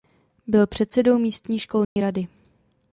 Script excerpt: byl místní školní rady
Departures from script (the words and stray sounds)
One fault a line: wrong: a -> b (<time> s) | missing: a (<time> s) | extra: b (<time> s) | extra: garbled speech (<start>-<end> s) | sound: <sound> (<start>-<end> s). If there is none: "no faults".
extra: předsedou (0.7 s)
sound: dropout (1.8-2.0 s)